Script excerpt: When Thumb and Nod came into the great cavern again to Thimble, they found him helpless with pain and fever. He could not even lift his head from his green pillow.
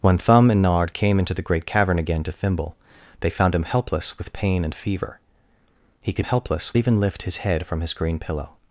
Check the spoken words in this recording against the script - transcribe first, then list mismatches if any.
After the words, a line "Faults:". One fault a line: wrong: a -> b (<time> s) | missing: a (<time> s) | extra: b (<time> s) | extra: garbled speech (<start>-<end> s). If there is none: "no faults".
When Thumb and Nod came into the great cavern again to Thimble, they found him helpless with pain and fever. He could helpless even lift his head from his green pillow.
Faults:
wrong: not -> helpless (6.2 s)